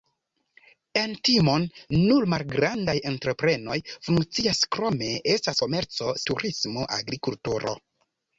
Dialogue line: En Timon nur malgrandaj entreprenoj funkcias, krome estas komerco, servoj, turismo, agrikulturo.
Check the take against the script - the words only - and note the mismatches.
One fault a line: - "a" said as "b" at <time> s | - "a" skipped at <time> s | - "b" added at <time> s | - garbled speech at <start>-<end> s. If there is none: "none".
- "servoj" skipped at 6.1 s